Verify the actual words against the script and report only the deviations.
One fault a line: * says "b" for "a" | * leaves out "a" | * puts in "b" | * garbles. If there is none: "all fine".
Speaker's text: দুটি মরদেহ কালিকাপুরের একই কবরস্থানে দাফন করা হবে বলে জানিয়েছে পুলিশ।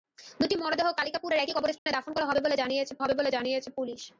* puts in "হবে বলে জানিয়েছে"